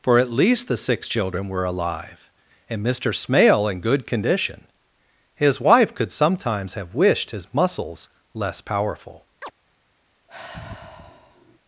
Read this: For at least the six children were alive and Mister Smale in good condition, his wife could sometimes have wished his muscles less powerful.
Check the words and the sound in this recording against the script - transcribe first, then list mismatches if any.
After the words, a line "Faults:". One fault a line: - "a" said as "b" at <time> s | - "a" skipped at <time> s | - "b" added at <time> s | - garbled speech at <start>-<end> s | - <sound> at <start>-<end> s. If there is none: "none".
For at least the six children were alive and Mister Smale in good condition, his wife could sometimes have wished his muscles less powerful.
Faults:
- chirp at 9.4-9.5 s
- sigh at 10.3-11.6 s